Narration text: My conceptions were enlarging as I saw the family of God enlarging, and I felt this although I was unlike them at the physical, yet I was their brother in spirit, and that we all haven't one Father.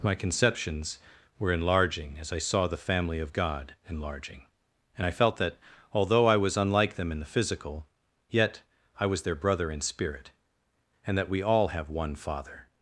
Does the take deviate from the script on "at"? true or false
true